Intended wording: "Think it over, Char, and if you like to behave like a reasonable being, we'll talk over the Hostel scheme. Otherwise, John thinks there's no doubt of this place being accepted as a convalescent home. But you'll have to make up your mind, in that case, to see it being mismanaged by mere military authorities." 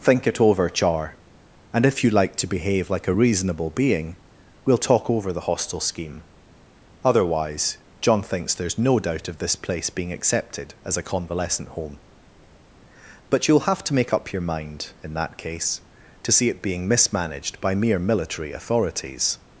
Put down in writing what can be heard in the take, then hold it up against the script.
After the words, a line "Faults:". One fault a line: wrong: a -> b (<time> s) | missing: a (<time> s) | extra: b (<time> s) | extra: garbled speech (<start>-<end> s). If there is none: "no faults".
"Think it over, Char, and if you like to behave like a reasonable being, we'll talk over the Hostel scheme. Otherwise, John thinks there's no doubt of this place being accepted as a convalescent home. But you'll have to make up your mind, in that case, to see it being mismanaged by mere military authorities."
Faults:
no faults